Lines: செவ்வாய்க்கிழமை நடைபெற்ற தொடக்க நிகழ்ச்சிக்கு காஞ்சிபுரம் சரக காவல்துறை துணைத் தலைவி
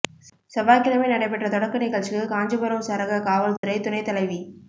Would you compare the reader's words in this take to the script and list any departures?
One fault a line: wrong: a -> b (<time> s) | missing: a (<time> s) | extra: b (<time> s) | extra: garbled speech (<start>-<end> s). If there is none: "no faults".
no faults